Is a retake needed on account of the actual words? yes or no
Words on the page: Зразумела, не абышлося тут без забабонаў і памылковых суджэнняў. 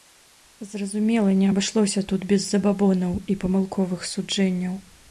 no